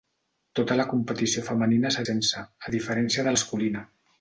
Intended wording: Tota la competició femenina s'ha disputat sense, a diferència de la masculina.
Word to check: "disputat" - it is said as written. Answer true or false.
false